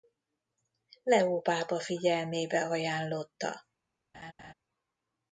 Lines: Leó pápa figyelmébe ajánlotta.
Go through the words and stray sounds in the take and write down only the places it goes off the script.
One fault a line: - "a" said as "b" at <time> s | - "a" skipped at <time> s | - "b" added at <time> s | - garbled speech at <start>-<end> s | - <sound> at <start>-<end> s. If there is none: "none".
- laugh at 4.1-4.5 s